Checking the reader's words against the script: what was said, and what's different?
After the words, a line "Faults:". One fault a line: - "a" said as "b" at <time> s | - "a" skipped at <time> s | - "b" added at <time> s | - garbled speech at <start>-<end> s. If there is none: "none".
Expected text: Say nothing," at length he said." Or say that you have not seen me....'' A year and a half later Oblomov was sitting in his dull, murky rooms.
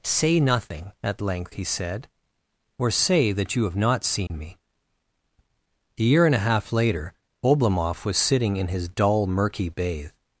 Say nothing," at length he said." Or say that you have not seen me....'' A year and a half later Oblomov was sitting in his dull, murky bathe.
Faults:
- "rooms" said as "bathe" at 9.7 s